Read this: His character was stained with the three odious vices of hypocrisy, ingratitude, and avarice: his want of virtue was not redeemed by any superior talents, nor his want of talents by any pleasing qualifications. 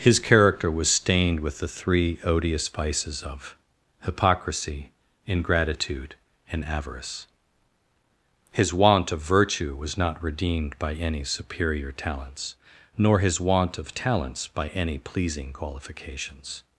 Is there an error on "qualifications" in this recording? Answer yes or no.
no